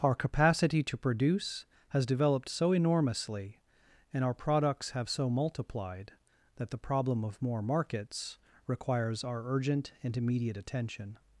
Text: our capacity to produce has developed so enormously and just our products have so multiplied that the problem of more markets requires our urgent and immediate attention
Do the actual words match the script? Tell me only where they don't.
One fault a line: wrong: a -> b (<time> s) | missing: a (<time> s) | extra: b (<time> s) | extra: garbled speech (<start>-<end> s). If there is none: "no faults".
missing: just (4.2 s)